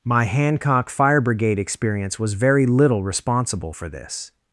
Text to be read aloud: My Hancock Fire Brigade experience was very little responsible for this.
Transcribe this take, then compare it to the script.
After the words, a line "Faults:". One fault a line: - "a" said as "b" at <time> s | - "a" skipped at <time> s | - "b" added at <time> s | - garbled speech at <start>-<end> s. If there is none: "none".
My Hancock Fire Brigade experience was very little responsible for this.
Faults:
none